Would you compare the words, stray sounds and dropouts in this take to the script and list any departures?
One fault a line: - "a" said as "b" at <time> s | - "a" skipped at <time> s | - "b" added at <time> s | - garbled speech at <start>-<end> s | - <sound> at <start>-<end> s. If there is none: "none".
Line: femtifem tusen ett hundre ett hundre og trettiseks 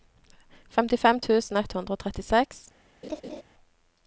- "ett hundre" skipped at 2.0 s
- laugh at 3.0-3.4 s